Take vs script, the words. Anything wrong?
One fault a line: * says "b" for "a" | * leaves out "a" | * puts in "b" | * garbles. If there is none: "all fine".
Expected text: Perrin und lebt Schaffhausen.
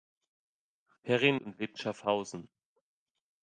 all fine